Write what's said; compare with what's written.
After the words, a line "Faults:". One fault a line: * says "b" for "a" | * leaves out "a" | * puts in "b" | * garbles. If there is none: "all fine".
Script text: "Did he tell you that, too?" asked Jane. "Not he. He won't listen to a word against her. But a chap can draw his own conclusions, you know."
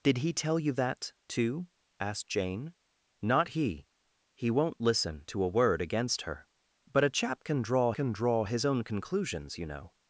"Did he tell you that, too?" asked Jane. "Not he. He won't listen to a word against her. But a chap can draw can draw his own conclusions, you know."
Faults:
* puts in "can draw"